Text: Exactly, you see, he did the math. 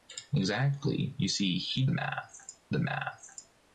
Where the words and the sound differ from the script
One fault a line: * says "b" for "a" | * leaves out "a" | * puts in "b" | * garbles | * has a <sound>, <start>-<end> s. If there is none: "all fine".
* says "math" for "did"